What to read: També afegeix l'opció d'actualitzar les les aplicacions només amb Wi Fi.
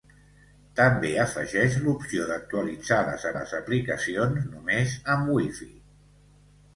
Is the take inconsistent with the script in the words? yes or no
no